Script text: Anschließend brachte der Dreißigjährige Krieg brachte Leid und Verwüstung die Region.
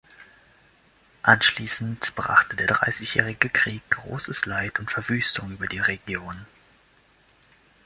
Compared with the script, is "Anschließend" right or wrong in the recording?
right